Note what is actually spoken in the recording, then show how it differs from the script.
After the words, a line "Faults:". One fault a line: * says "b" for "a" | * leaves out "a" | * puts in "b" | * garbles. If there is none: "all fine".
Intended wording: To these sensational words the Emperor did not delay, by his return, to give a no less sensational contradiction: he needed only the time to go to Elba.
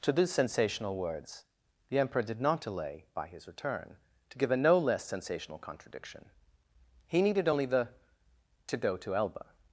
To these sensational words the Emperor did not delay, by his return, to give a no less sensational contradiction: he needed only the to go to Elba.
Faults:
* leaves out "time"